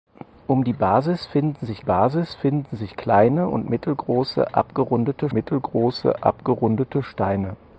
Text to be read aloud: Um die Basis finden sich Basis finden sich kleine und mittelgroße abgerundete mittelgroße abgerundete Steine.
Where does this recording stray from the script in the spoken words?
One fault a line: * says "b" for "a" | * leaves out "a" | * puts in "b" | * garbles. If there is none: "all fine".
all fine